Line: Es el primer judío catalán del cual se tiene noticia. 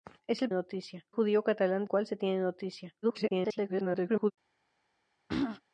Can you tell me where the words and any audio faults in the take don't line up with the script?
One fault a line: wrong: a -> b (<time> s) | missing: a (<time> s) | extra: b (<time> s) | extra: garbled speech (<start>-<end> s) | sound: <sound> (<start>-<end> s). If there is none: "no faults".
wrong: primer -> noticia (0.5 s)
missing: del (1.8 s)
extra: garbled speech (3.0-4.3 s)
sound: throat clearing (5.3-5.6 s)